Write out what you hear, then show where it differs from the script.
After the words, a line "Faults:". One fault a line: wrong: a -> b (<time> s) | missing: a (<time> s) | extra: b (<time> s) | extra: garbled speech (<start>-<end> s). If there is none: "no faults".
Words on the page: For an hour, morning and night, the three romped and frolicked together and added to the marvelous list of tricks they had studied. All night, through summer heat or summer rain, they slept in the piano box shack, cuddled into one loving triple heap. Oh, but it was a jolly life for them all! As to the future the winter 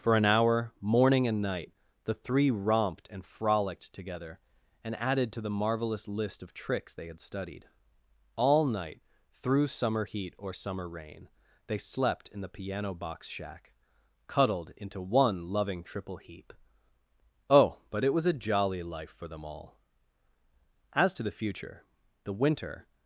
For an hour, morning and night, the three romped and frolicked together and added to the marvelous list of tricks they had studied. All night, through summer heat or summer rain, they slept in the piano box shack, cuddled into one loving triple heap. Oh, but it was a jolly life for them all! As to the future the winter
Faults:
no faults